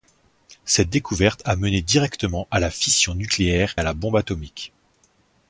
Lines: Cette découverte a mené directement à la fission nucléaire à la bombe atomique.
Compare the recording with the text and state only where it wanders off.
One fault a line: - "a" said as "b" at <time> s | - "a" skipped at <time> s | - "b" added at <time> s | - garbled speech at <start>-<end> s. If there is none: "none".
none